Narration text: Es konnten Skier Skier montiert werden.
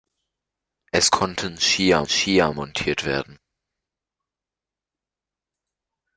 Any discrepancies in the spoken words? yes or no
no